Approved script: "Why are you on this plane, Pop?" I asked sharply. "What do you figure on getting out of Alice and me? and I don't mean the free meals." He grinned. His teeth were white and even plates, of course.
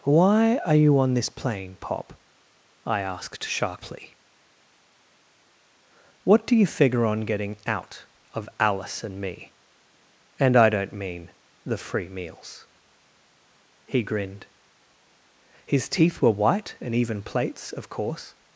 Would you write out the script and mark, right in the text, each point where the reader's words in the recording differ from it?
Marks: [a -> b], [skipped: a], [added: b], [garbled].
"Why are you on this plane, Pop?" I asked sharply. "What do you figure on getting out of Alice and me? and I don't mean the free meals." He grinned. His teeth were white and even plates, of course.